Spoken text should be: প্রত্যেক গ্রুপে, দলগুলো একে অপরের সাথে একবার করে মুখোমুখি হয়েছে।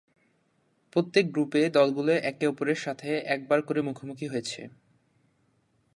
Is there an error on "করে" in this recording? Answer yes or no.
no